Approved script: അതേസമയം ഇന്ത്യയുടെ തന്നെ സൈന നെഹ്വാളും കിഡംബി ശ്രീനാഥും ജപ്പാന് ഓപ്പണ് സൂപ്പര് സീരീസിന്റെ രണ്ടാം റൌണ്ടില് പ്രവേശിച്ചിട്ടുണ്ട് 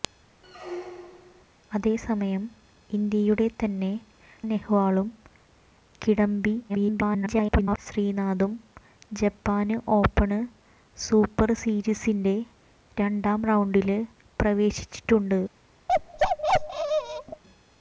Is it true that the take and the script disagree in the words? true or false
true